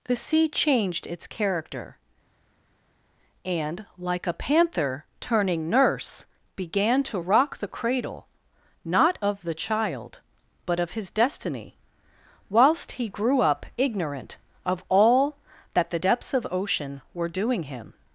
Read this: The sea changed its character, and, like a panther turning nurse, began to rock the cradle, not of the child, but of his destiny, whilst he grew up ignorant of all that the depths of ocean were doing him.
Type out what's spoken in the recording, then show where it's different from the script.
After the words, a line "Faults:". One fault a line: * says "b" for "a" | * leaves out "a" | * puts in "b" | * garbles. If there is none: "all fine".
The sea changed its character, and, like a panther turning nurse, began to rock the cradle, not of the child, but of his destiny, whilst he grew up ignorant of all that the depths of ocean were doing him.
Faults:
all fine